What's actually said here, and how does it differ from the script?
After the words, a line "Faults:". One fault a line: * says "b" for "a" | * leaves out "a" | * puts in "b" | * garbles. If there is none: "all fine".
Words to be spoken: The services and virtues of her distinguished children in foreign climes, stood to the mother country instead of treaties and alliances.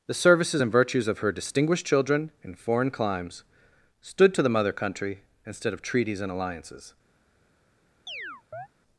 The services and virtues of her distinguished children in foreign climes, stood to the mother country instead of treaties and alliances.
Faults:
all fine